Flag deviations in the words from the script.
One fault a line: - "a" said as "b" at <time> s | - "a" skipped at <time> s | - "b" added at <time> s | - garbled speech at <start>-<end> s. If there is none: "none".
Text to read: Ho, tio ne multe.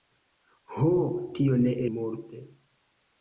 none